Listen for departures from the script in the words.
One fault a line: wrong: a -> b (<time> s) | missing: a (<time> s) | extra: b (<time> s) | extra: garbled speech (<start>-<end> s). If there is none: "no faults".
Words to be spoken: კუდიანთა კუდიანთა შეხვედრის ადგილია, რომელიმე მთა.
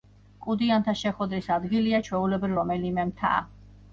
missing: კუდიანთა (0.9 s)
extra: ჩვეულებრივ (2.1 s)